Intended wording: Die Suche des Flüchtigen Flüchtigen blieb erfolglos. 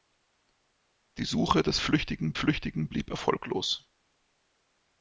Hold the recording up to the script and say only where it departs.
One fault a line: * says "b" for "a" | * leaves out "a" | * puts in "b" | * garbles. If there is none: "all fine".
all fine